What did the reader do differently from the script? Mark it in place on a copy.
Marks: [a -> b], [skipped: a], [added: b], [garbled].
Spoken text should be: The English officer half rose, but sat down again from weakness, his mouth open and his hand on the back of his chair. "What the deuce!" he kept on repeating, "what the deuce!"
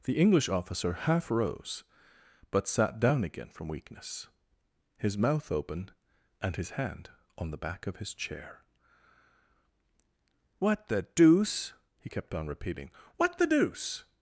The English officer half rose, but sat down again from weakness, his mouth open and his hand on the back of his chair. "What the deuce!" he kept on repeating, "what the deuce!"